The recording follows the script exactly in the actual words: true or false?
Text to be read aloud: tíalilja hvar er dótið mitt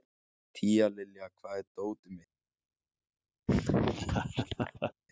true